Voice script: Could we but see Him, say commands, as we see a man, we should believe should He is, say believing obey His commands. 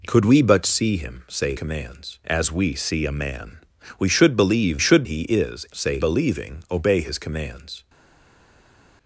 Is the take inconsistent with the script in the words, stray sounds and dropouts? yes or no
no